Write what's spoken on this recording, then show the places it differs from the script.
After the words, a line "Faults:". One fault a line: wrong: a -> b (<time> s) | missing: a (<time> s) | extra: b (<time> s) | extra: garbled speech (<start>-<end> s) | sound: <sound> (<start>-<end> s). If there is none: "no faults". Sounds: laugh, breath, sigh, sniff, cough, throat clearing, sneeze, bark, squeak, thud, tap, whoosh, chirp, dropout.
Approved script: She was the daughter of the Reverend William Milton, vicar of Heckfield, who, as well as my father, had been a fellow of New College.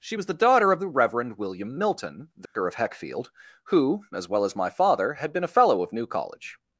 She was the daughter of the Reverend William Milton, vicar of Heckfield, who, as well as my father, had been a fellow of New College.
Faults:
sound: dropout (2.5-2.6 s)